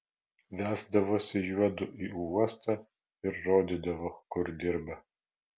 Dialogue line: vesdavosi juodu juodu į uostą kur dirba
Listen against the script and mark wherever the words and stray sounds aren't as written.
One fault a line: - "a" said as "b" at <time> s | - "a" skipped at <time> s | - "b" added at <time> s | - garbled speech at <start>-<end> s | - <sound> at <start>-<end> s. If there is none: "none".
- "juodu" skipped at 1.9 s
- "ir rodydavo" added at 3.3 s